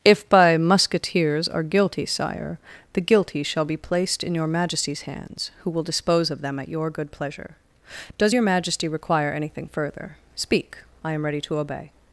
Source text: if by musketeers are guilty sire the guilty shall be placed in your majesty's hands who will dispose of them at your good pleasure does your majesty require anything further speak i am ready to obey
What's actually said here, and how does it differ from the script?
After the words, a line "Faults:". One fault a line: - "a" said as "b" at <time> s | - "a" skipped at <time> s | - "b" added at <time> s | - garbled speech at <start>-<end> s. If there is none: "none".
if by musketeers are guilty sire the guilty shall be placed in your majesty's hands who will dispose of them at your good pleasure does your majesty require anything further speak i am ready to obey
Faults:
none